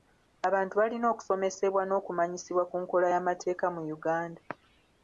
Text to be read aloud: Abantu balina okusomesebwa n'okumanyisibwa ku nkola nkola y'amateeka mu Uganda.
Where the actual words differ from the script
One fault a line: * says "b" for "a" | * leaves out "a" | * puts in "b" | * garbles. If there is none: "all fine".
* leaves out "nkola"